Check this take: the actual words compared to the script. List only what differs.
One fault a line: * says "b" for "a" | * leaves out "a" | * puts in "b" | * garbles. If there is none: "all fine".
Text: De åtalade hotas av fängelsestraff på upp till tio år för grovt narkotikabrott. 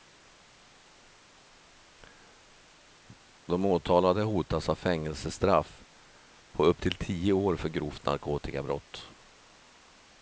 all fine